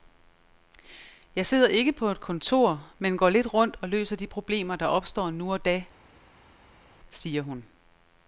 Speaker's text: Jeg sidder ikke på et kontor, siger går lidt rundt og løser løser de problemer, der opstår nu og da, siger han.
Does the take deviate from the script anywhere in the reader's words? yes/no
yes